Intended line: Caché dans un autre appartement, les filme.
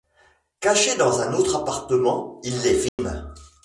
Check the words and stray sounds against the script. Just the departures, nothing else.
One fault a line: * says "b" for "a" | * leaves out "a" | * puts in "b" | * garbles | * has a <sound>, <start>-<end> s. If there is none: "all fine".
* puts in "il"
* has a dropout, 2.9-3.0 s